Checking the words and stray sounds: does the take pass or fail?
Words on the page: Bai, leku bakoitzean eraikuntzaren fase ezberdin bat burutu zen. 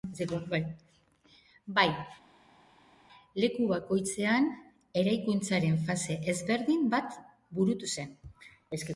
pass